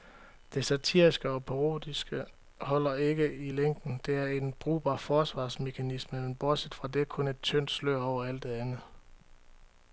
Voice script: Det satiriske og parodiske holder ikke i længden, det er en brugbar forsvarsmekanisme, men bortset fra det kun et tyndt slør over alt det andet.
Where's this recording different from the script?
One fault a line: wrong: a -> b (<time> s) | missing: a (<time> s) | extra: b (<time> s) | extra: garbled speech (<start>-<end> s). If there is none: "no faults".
no faults